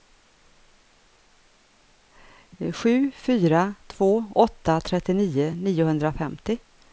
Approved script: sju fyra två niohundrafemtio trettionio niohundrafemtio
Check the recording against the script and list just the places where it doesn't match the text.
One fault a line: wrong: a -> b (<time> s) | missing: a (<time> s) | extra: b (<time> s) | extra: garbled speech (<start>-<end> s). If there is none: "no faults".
wrong: niohundrafemtio -> åtta (4.3 s)